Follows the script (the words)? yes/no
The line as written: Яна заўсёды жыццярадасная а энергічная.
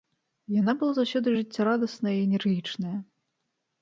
no